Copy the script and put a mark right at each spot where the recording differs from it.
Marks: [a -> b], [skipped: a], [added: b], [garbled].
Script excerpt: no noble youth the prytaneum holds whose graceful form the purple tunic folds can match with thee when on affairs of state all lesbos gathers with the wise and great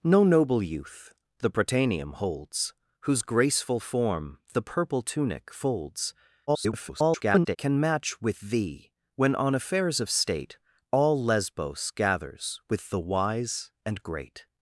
no noble youth the prytaneum holds whose graceful form the purple tunic folds [garbled] can match with thee when on affairs of state all lesbos gathers with the wise and great